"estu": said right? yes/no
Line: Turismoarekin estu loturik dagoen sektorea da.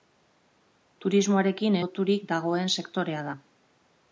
no